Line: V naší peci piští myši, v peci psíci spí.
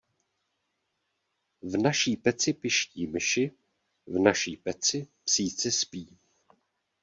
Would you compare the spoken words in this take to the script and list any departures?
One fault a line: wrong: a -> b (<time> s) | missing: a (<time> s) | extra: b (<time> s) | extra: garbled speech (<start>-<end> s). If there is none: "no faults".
extra: naší (4.2 s)